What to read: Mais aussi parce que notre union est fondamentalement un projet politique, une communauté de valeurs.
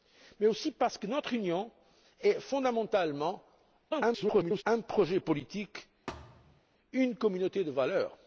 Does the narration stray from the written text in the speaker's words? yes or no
yes